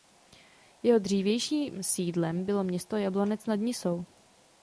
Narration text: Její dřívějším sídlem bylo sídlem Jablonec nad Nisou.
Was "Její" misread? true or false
true